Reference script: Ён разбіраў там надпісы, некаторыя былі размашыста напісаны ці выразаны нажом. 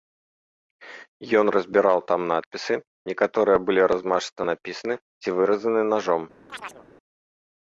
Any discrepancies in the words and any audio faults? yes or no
yes